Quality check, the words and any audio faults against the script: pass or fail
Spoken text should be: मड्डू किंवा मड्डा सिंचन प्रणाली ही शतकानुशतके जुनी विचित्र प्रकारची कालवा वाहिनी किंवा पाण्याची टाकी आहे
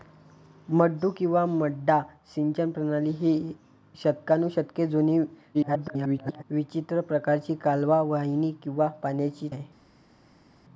fail